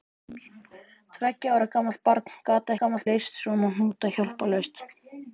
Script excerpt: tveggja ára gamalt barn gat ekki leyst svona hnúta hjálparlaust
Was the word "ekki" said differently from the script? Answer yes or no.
yes